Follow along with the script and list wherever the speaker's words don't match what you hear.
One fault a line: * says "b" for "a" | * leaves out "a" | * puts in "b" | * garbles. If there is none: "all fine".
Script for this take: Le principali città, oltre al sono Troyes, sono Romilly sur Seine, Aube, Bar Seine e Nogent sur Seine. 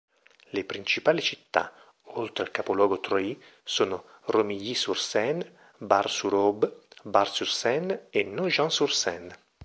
* says "capoluogo" for "sono"
* puts in "Bar sur"
* puts in "sur"